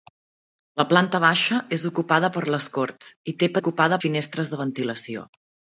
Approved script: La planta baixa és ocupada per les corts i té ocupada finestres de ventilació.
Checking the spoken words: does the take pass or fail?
pass